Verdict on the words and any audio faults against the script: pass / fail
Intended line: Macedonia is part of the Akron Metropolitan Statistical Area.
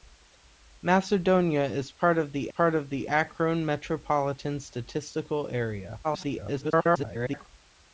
fail